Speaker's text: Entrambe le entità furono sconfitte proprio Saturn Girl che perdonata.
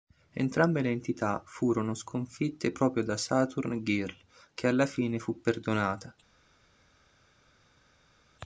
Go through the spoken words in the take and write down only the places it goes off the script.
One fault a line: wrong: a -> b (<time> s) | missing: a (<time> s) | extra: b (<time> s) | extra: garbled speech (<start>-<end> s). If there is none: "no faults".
extra: da (3.0 s)
extra: alla fine fu (4.7 s)